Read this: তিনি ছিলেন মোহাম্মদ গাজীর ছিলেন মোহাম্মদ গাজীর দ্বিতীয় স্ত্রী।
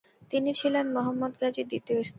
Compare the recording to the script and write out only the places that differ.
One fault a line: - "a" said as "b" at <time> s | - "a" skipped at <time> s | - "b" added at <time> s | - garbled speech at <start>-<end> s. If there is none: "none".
- "ছিলেন মোহাম্মদ গাজীর" skipped at 1.7 s